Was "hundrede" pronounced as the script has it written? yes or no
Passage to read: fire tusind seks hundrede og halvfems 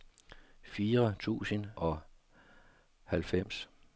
no